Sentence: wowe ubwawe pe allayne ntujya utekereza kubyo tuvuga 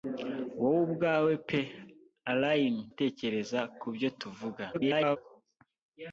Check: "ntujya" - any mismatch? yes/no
yes